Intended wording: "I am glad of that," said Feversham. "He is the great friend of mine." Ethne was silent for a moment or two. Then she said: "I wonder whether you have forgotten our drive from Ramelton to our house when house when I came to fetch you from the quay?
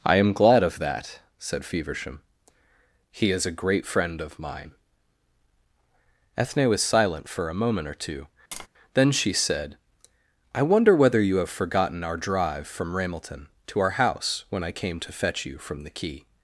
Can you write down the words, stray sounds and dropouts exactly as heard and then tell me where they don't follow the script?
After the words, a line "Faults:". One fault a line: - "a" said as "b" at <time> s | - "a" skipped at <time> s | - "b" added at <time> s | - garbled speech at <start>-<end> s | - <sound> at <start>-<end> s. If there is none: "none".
"I am glad of that," said Feversham. "He is a great friend of mine." Ethne was silent for a moment or two. Then she said: "I wonder whether you have forgotten our drive from Ramelton to our house when I came to fetch you from the quay?
Faults:
- "the" said as "a" at 3.5 s
- tap at 8.5-8.7 s
- "house when" skipped at 14.6 s